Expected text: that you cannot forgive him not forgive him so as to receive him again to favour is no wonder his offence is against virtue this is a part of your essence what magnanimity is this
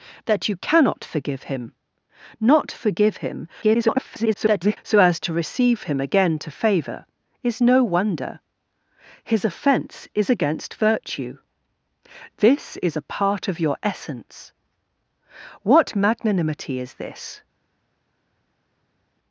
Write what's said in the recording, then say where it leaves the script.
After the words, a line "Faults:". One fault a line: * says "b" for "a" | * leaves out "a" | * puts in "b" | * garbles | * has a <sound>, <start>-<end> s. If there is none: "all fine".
that you cannot forgive him not forgive him [garbled] so as to receive him again to favour is no wonder his offence is against virtue this is a part of your essence what magnanimity is this
Faults:
* garbles